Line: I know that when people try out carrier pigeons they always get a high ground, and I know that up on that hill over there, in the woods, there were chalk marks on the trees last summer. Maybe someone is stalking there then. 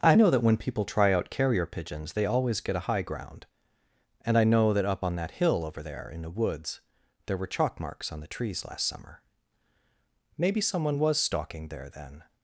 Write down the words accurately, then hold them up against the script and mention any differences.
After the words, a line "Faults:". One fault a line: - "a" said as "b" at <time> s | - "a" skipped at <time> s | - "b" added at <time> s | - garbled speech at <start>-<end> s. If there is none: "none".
I know that when people try out carrier pigeons they always get a high ground, and I know that up on that hill over there, in the woods, there were chalk marks on the trees last summer. Maybe someone was stalking there then.
Faults:
- "is" said as "was" at 11.0 s